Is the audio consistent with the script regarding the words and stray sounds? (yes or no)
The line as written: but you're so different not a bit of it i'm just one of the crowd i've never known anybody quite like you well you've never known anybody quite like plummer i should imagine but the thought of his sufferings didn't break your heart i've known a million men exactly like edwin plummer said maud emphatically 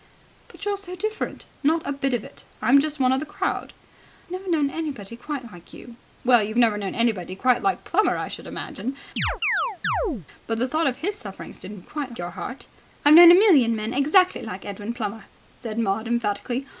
no